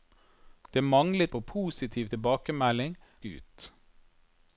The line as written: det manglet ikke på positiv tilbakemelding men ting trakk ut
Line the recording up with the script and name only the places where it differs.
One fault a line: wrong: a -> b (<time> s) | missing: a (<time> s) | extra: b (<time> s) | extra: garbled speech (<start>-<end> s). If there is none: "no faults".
missing: ikke (1.3 s)
missing: men ting trakk (3.0 s)